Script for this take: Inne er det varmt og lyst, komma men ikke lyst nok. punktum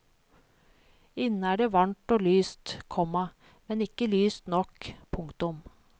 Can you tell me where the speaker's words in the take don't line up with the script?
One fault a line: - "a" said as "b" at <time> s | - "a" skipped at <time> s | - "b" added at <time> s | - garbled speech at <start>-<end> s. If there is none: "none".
none